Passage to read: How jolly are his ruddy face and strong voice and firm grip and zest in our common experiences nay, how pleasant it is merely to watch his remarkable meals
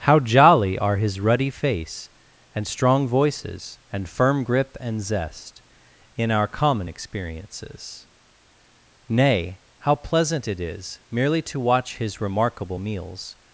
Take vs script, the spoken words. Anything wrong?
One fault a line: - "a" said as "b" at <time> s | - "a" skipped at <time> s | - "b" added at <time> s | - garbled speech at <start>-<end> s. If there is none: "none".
- "voice" said as "voices" at 3.1 s